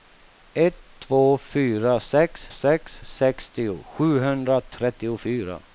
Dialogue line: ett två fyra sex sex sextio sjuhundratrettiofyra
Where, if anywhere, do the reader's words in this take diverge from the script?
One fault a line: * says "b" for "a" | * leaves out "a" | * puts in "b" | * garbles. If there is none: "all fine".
all fine